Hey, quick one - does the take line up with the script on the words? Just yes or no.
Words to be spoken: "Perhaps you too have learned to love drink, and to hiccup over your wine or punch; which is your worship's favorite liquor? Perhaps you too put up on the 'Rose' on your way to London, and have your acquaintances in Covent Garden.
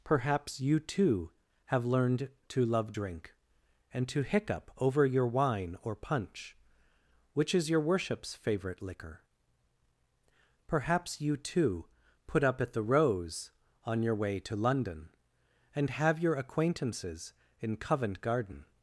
no